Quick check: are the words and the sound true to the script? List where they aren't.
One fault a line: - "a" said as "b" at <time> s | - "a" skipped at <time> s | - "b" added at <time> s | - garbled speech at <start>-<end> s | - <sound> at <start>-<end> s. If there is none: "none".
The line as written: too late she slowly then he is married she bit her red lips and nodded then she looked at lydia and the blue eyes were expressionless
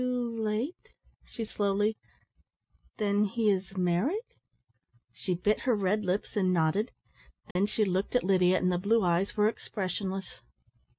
- dropout at 7.5-7.6 s